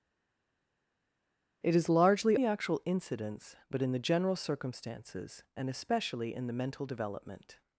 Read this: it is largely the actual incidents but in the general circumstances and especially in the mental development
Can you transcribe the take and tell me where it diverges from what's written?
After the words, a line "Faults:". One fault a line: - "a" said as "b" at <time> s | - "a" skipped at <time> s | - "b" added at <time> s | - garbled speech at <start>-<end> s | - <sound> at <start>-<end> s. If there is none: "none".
it is largely the actual incidents but in the general circumstances and especially in the mental development
Faults:
none